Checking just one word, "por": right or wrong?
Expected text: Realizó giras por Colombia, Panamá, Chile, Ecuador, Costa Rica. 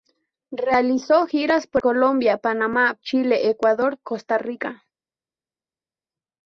right